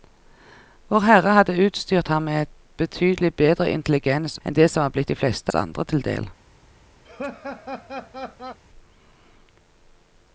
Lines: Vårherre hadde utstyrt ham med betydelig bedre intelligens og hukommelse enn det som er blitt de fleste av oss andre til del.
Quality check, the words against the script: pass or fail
fail